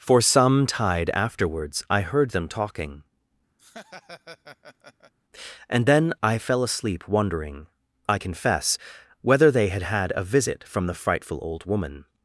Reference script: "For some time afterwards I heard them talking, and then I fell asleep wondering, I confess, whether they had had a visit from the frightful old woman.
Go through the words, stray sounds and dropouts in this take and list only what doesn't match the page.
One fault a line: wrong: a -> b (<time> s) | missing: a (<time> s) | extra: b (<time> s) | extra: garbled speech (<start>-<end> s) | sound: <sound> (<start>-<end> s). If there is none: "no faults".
wrong: time -> tide (0.7 s)
sound: laugh (3.6-5.1 s)